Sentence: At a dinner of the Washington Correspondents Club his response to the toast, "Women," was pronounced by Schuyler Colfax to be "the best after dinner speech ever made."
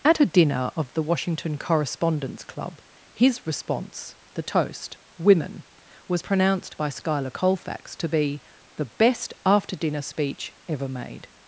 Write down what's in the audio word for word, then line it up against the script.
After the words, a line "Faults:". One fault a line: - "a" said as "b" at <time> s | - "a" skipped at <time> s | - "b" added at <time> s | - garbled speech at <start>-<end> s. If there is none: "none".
At a dinner of the Washington Correspondents Club his response the toast, "Women," was pronounced by Schuyler Colfax to be "the best after dinner speech ever made."
Faults:
- "to" skipped at 4.2 s